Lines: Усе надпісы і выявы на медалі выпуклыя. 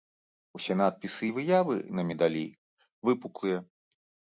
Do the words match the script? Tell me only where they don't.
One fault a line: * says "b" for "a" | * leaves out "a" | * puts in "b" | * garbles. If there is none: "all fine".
all fine